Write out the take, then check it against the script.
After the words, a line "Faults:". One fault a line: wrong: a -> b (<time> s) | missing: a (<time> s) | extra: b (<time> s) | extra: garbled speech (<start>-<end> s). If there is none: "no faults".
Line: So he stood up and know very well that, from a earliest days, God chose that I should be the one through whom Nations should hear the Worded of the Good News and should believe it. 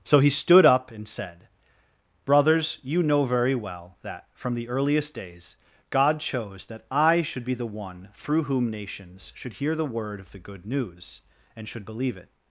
So he stood up and said:' Brothers, you know very well that, from the earliest days, God chose that I should be the one through whom Nations should hear the Word of the Good News and should believe it.
Faults:
extra: said Brothers you (1.1 s)
wrong: a -> the (4.5 s)
wrong: Worded -> Word (9.8 s)